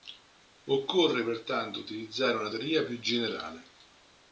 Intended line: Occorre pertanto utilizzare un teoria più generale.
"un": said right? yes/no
no